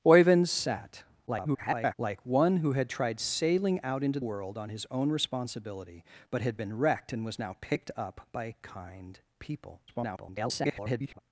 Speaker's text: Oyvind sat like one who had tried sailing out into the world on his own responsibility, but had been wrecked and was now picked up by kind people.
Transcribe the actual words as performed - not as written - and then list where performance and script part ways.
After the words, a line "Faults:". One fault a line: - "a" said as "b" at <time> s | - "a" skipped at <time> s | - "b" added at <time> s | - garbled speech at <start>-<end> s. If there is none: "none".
Oyvind sat [garbled] like one who had tried sailing out into world on his own responsibility, but had been wrecked and was now picked up by kind people. [garbled]
Faults:
- garbled speech at 1.3-1.9 s
- "the" skipped at 4.2 s
- garbled speech at 9.9-11.2 s